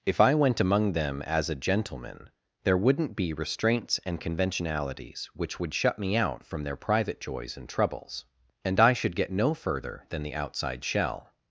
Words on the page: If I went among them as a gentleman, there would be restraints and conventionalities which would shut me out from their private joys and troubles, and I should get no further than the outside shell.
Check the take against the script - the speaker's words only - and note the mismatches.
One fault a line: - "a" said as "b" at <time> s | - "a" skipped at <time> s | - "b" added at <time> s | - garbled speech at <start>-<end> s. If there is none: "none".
- "would" said as "wouldn't" at 2.8 s